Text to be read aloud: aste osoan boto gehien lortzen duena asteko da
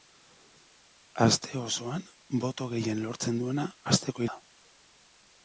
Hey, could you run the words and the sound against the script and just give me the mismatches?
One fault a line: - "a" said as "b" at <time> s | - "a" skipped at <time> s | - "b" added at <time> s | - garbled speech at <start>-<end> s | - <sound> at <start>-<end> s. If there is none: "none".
none